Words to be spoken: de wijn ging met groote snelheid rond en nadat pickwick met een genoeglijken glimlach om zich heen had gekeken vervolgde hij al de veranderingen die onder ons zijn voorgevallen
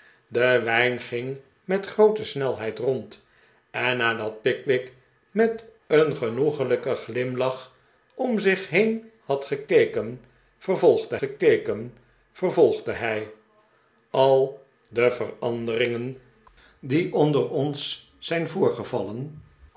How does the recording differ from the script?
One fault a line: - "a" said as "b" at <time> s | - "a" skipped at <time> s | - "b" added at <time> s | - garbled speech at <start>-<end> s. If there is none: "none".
- "gekeken vervolgde" added at 11.2 s